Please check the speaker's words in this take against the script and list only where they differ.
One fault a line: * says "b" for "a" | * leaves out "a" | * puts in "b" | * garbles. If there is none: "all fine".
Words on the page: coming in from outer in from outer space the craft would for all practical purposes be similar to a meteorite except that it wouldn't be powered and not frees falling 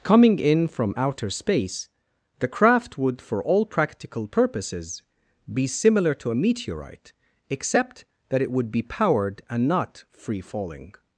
* leaves out "in from outer"
* says "would" for "wouldn't"
* says "free" for "frees"